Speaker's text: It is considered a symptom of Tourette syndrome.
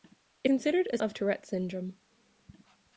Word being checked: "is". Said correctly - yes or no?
no